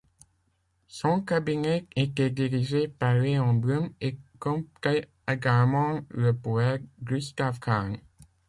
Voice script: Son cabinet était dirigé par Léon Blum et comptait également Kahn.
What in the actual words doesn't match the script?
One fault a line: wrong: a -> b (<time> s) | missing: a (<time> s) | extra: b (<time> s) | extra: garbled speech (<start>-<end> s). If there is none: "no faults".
extra: le poète Gustave (6.1 s)